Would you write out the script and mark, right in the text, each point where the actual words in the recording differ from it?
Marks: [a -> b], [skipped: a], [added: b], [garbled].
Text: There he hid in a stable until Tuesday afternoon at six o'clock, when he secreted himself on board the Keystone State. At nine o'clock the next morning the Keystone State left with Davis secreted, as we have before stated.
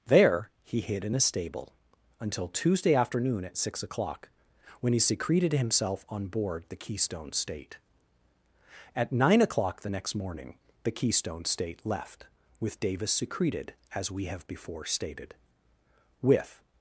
There he hid in a stable until Tuesday afternoon at six o'clock, when he secreted himself on board the Keystone State. At nine o'clock the next morning the Keystone State left with Davis secreted, as we have before stated. [added: With]